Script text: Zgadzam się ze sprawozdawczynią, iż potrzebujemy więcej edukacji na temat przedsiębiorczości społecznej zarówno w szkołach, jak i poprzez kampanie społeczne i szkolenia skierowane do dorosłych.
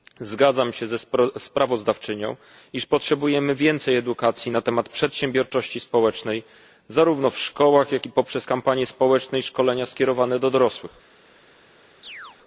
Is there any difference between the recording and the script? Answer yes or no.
no